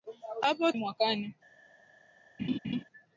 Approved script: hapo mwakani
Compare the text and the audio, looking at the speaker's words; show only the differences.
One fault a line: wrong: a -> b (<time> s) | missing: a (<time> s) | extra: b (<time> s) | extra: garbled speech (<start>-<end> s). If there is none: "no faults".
no faults